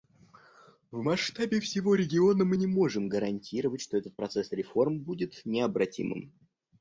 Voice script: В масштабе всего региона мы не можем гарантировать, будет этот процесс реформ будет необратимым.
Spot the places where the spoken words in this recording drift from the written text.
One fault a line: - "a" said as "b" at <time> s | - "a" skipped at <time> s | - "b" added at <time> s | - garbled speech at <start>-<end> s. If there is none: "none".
- "будет" said as "что" at 3.8 s